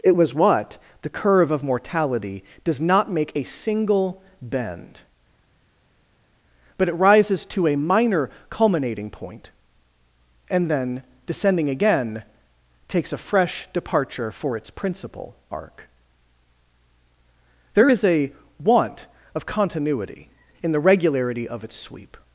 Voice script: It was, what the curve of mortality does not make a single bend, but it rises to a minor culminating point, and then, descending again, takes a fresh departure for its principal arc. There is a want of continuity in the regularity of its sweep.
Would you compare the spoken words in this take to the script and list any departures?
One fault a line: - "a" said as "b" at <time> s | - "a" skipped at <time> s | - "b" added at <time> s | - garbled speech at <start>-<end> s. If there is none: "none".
none